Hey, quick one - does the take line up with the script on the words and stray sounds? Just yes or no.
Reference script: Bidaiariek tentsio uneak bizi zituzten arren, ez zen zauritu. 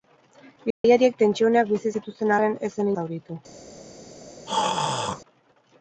no